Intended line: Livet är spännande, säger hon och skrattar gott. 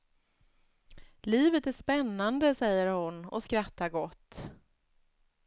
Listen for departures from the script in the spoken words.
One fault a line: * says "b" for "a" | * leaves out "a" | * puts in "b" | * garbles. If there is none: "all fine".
all fine